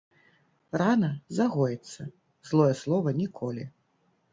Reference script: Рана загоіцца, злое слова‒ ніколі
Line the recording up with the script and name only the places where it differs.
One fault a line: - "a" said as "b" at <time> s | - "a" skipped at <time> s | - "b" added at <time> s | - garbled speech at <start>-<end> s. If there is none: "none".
none